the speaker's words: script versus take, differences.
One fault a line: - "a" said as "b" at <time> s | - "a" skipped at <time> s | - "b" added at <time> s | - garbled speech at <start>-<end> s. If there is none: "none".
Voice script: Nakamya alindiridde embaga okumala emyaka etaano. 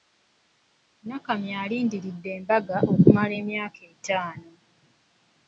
none